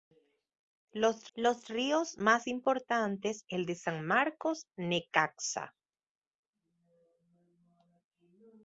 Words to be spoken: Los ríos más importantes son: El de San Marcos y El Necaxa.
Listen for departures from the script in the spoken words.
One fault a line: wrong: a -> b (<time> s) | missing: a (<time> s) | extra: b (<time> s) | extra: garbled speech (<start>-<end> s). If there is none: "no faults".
extra: los (1.4 s)
missing: son (3.4 s)
missing: y El (4.7 s)